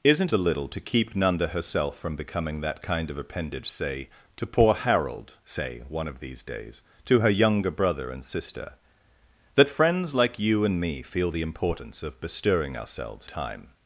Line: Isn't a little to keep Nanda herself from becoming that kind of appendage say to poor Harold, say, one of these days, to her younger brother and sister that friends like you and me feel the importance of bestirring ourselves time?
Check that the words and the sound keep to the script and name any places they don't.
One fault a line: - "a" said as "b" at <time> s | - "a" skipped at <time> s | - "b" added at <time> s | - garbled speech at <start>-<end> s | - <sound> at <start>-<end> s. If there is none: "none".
none